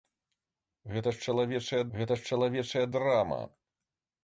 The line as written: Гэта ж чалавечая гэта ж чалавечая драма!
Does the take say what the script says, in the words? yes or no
yes